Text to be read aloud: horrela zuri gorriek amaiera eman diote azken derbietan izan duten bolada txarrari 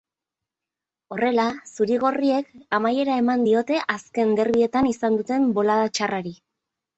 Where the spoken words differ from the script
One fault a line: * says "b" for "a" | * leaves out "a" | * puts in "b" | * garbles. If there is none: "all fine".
all fine